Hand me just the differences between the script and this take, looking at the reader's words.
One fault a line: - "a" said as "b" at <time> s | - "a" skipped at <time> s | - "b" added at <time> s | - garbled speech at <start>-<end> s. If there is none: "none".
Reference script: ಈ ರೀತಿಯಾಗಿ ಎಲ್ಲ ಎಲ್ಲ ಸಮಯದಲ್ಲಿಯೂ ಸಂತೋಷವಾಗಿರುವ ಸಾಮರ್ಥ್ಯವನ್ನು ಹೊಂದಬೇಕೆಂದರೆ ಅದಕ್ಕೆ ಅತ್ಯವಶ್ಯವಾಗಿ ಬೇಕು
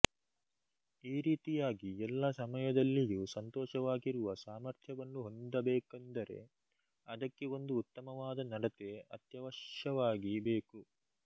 - "ಎಲ್ಲ" skipped at 2.2 s
- "ಒಂದು ಉತ್ತಮವಾದ ನಡತೆ" added at 7.6 s